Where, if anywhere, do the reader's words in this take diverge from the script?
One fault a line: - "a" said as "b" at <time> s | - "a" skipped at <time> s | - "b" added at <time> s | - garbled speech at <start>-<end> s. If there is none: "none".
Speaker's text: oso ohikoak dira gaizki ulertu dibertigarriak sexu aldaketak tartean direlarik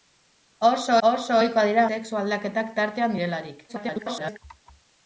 - "oso" added at 1.1 s
- "gaizki ulertu dibertigarriak" skipped at 1.8 s
- garbled speech at 3.7-4.4 s